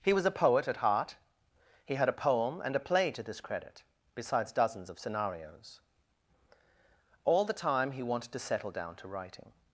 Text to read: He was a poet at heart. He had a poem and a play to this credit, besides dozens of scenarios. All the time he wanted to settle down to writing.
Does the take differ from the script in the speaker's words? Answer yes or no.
no